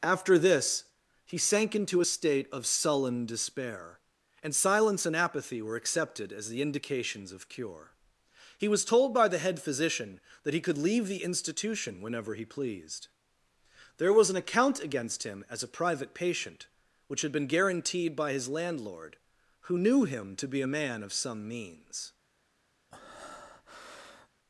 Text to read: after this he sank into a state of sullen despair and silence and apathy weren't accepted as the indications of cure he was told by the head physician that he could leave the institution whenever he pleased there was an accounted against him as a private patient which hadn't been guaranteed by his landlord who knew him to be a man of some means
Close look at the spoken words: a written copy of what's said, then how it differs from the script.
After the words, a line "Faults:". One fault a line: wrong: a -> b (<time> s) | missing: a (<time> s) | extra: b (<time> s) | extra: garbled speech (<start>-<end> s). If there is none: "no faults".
after this he sank into a state of sullen despair and silence and apathy were accepted as the indications of cure he was told by the head physician that he could leave the institution whenever he pleased there was an account against him as a private patient which had been guaranteed by his landlord who knew him to be a man of some means
Faults:
wrong: weren't -> were (5.6 s)
wrong: accounted -> account (14.4 s)
wrong: hadn't -> had (17.2 s)